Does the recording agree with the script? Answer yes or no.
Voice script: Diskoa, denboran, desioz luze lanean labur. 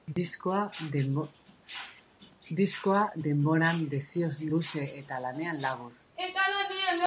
no